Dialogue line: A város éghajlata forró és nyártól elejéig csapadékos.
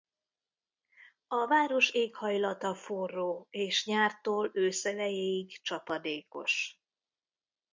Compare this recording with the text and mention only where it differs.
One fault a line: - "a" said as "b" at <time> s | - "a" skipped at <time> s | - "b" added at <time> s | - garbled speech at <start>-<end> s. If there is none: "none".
- "ősz" added at 4.5 s